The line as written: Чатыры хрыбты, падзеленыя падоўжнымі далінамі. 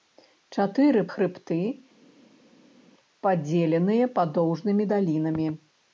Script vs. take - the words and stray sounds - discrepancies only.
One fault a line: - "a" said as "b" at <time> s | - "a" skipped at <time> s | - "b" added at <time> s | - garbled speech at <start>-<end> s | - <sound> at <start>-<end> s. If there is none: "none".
none